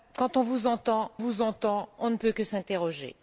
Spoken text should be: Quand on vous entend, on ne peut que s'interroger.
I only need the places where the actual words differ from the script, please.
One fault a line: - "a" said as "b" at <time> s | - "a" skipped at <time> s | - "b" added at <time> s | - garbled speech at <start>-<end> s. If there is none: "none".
- "vous entend" added at 1.2 s